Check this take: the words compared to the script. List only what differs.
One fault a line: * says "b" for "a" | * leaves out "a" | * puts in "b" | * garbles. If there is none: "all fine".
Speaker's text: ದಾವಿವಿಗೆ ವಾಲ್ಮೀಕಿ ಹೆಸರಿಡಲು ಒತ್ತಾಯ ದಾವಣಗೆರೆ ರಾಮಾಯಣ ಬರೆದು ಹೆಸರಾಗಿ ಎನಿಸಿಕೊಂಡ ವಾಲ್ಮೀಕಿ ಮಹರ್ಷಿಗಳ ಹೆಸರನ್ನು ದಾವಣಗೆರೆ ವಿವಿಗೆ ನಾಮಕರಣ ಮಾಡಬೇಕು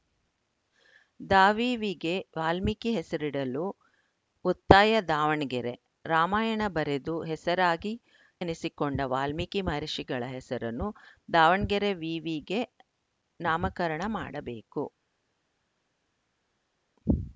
all fine